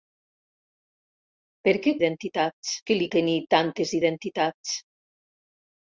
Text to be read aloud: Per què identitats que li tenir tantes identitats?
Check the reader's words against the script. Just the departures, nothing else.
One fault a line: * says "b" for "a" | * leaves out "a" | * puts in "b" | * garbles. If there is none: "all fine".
all fine